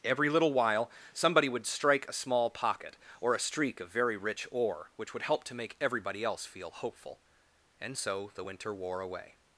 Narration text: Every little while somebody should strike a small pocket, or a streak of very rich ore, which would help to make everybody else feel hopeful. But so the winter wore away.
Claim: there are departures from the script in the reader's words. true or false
true